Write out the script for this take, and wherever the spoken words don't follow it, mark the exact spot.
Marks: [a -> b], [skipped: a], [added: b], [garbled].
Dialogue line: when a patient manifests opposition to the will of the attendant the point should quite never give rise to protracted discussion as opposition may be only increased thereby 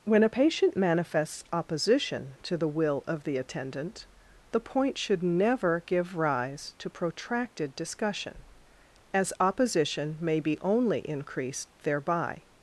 when a patient manifests opposition to the will of the attendant the point should [skipped: quite] never give rise to protracted discussion as opposition may be only increased thereby